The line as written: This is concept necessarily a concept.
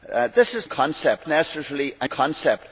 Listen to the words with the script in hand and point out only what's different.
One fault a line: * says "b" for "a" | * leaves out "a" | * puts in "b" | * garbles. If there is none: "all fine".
all fine